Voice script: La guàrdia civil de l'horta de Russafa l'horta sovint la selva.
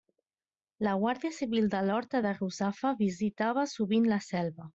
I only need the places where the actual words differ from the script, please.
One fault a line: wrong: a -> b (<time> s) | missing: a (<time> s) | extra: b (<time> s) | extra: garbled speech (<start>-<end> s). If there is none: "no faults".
wrong: l'horta -> visitava (3.0 s)